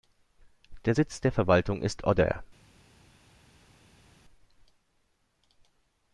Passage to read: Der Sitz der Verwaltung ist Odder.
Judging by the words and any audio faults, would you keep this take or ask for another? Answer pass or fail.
pass